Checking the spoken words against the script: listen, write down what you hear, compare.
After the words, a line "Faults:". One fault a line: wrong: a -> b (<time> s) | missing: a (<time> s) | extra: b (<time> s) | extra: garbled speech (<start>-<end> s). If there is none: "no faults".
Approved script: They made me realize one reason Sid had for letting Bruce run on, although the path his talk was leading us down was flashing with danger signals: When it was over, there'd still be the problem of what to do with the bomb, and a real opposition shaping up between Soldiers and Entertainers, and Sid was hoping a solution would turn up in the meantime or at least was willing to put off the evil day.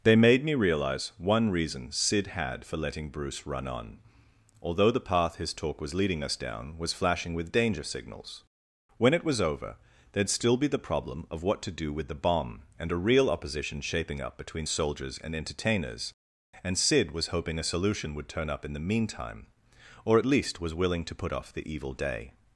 They made me realize one reason Sid had for letting Bruce run on, although the path his talk was leading us down was flashing with danger signals: When it was over, there'd still be the problem of what to do with the bomb, and a real opposition shaping up between Soldiers and Entertainers, and Sid was hoping a solution would turn up in the meantime or at least was willing to put off the evil day.
Faults:
no faults